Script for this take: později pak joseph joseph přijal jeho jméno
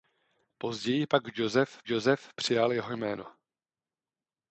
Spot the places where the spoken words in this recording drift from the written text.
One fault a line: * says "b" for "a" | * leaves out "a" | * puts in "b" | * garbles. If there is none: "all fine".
all fine